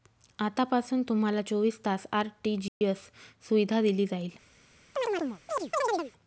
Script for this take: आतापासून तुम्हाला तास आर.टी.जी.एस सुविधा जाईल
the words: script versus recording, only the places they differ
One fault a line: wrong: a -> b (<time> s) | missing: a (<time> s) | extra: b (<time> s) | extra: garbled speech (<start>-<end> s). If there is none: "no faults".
extra: चोवीस (1.4 s)
extra: दिली (3.8 s)